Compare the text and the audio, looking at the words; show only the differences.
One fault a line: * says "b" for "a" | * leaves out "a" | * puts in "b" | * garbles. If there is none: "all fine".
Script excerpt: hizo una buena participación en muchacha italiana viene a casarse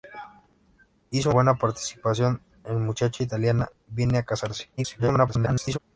* leaves out "una"
* garbles